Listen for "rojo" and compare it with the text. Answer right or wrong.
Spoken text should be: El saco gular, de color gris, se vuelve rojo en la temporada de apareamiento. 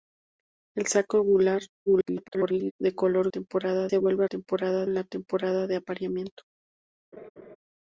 wrong